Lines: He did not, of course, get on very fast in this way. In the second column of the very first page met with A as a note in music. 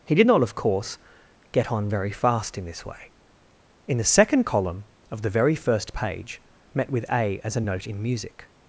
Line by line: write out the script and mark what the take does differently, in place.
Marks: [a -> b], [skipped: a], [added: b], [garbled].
He did not, of course, get on very fast in this way. In the second column of the very first page met with A as a note in music.